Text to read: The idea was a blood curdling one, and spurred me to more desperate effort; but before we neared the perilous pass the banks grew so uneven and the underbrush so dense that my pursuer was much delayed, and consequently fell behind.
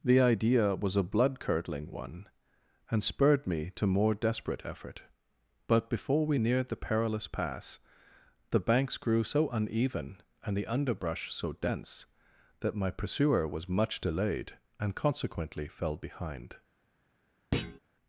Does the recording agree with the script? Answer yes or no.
yes